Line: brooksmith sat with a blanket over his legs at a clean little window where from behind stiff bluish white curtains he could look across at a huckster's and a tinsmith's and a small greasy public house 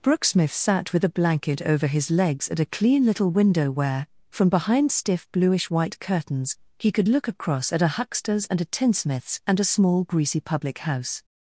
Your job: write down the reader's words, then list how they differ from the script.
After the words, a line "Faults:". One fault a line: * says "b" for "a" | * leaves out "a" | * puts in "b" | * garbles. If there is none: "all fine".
brooksmith sat with a blanket over his legs at a clean little window where from behind stiff bluish white curtains he could look across at a huckster's and a tinsmith's and a small greasy public house
Faults:
all fine